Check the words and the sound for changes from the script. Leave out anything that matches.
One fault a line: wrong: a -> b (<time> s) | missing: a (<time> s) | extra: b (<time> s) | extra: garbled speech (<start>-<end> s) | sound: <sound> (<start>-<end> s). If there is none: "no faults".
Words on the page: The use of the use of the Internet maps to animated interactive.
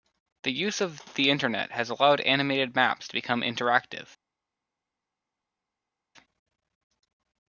wrong: use of the Internet -> Internet has allowed animated (1.3 s)
wrong: animated -> become (3.1 s)